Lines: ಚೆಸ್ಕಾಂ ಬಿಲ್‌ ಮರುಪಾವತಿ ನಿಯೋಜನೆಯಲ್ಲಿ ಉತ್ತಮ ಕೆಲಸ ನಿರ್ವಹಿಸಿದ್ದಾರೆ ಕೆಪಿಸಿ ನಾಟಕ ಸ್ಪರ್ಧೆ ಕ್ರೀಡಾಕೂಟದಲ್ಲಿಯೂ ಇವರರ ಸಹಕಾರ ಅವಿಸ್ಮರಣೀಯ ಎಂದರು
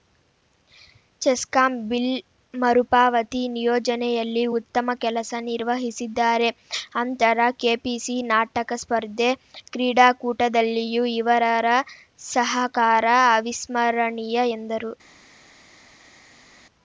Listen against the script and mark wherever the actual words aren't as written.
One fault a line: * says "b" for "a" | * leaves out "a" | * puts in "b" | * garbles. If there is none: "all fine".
* puts in "ಅಂತರ"